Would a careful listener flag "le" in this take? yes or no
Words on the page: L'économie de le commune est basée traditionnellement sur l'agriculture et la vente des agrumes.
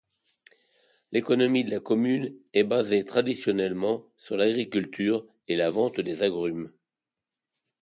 yes